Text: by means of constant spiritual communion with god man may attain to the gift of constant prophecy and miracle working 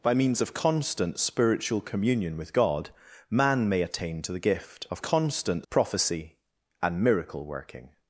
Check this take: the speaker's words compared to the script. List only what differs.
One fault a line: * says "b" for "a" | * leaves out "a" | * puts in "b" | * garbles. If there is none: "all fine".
all fine